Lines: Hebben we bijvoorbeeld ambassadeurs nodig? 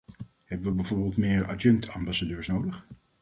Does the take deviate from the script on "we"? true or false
false